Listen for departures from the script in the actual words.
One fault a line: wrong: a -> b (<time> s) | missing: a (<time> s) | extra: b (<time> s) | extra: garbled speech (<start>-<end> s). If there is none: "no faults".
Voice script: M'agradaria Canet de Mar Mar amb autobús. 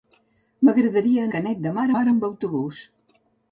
no faults